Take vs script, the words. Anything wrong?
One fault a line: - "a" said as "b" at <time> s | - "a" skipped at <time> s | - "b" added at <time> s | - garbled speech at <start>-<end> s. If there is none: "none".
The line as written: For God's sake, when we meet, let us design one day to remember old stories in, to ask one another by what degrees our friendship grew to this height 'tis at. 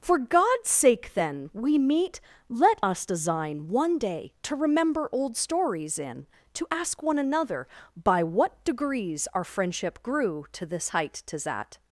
- "when" said as "then" at 1.1 s